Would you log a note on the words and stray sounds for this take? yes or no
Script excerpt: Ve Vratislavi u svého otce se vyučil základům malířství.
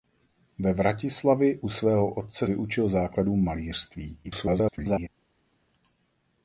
yes